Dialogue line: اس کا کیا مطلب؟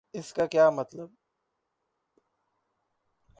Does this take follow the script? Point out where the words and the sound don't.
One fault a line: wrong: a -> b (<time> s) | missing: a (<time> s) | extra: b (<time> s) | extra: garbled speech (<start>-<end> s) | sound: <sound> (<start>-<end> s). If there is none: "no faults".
no faults